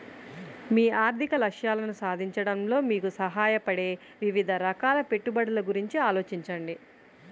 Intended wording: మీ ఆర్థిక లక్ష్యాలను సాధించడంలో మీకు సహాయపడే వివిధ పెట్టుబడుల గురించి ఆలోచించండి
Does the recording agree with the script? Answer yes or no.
no